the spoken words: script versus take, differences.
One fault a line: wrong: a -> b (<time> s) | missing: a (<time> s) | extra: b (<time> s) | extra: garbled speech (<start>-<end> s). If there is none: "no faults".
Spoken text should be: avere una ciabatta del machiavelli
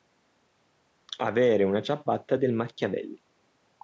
no faults